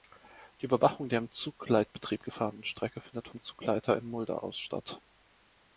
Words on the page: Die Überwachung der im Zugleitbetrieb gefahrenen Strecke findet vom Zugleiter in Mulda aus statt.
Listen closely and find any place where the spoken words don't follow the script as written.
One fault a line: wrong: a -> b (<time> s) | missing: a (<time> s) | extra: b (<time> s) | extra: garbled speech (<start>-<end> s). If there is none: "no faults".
no faults